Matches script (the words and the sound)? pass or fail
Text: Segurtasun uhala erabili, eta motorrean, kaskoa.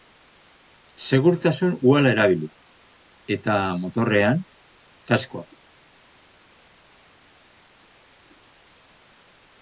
pass